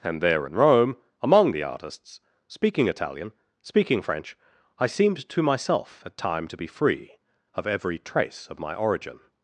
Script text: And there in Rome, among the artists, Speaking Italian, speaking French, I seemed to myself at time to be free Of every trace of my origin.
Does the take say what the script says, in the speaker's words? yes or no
yes